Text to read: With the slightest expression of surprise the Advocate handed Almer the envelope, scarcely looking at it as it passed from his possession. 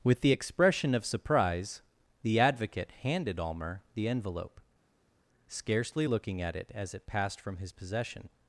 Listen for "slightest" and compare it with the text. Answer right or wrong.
wrong